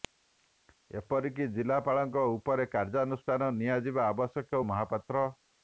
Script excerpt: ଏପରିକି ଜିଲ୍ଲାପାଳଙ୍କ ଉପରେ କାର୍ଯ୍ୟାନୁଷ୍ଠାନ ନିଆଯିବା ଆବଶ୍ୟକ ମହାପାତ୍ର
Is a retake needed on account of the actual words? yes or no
no